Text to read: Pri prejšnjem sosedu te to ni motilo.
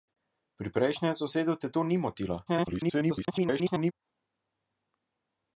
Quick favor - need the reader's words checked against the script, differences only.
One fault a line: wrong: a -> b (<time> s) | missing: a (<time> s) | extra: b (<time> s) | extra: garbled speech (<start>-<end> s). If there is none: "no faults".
extra: garbled speech (2.5-3.9 s)